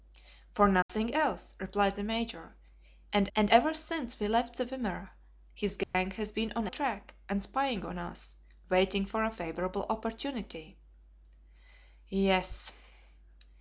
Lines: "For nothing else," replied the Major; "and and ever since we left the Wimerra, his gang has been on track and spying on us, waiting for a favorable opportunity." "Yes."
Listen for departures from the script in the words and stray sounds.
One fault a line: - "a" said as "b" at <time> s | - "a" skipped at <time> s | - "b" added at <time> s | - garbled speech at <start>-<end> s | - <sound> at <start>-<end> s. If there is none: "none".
- dropout at 0.8-0.9 s
- dropout at 5.8-5.9 s